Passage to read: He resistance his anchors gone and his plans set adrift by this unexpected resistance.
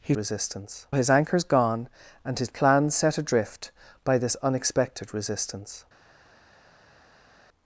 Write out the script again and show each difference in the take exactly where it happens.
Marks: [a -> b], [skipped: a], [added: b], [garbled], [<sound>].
He resistance his anchors gone and his plans set adrift by this unexpected resistance.